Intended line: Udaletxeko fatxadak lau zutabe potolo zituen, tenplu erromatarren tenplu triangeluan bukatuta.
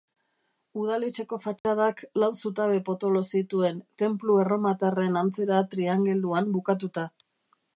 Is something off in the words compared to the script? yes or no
yes